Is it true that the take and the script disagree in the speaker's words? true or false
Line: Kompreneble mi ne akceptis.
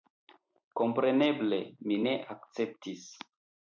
false